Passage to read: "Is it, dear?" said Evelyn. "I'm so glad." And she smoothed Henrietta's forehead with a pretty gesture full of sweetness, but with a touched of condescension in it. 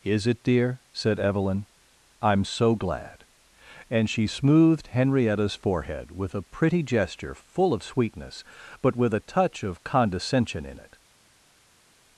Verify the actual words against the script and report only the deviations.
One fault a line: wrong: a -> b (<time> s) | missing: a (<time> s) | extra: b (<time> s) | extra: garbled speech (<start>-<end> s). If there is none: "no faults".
wrong: touched -> touch (9.2 s)